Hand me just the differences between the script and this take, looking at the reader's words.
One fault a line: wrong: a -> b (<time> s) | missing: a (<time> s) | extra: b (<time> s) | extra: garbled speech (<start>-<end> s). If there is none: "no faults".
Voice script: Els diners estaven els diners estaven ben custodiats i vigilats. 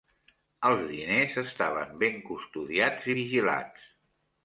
missing: els diners estaven (1.9 s)